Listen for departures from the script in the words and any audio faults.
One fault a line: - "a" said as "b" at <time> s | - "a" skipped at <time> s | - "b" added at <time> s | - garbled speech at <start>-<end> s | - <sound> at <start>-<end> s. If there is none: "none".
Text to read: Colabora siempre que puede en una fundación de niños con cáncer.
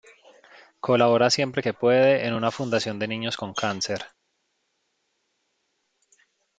none